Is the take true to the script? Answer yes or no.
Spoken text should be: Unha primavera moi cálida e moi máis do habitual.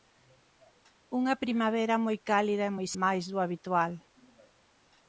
yes